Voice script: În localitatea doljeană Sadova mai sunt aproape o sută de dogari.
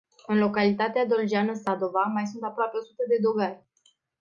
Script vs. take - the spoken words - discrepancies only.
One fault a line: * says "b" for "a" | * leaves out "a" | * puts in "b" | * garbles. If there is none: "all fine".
all fine